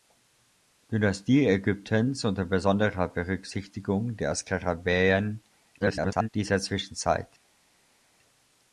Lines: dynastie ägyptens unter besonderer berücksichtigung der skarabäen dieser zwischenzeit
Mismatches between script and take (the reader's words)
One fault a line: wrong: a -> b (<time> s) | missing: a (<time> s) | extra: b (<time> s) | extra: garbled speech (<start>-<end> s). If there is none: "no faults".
extra: garbled speech (5.8-6.3 s)